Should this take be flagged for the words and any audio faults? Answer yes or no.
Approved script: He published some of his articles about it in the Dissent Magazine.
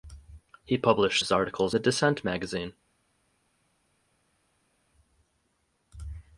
yes